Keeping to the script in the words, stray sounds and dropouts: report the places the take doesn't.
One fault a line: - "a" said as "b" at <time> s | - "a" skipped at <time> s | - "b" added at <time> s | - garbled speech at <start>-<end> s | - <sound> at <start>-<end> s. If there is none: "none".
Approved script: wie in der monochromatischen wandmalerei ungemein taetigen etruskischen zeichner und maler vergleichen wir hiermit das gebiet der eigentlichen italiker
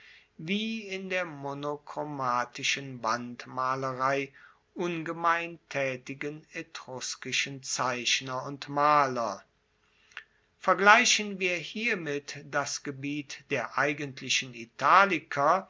none